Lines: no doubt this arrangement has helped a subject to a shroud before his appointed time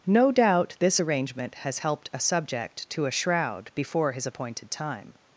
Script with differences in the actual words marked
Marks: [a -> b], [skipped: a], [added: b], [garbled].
no doubt this arrangement has helped a subject to a shroud before his appointed time